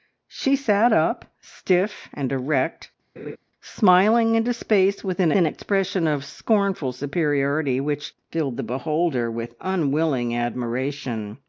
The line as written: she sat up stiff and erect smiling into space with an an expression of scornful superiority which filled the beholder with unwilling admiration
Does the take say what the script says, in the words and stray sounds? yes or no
no